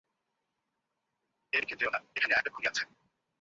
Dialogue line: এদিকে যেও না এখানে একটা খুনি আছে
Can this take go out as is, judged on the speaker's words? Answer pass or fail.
pass